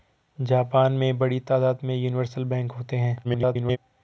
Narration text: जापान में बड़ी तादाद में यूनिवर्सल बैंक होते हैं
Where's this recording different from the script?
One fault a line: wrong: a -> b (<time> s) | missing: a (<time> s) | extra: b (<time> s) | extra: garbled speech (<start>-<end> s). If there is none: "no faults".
extra: garbled speech (3.2-3.8 s)